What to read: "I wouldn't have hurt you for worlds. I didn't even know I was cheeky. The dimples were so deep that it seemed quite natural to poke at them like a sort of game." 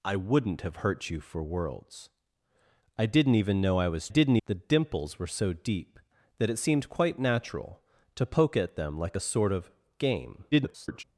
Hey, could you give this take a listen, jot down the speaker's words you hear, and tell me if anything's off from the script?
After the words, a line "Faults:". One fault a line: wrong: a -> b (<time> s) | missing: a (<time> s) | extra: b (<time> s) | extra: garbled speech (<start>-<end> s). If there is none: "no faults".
"I wouldn't have hurt you for worlds. I didn't even know I was didn't. The dimples were so deep that it seemed quite natural to poke at them like a sort of game." [garbled]
Faults:
wrong: cheeky -> didn't (4.1 s)
extra: garbled speech (10.5-11.0 s)